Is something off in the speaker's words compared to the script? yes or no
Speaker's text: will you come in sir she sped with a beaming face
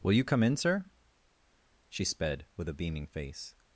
no